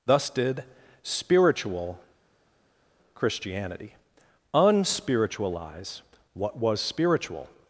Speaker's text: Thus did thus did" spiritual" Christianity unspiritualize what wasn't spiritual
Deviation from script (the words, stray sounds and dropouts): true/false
true